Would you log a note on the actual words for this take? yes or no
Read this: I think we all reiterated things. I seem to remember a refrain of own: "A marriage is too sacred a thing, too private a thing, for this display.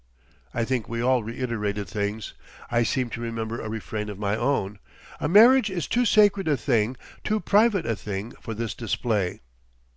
yes